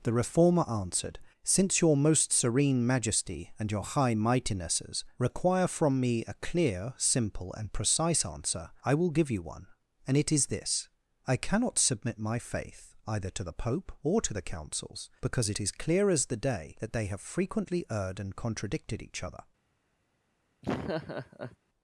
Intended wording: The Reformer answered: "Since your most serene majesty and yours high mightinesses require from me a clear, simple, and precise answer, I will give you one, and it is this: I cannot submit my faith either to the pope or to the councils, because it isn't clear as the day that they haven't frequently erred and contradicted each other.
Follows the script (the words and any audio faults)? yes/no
no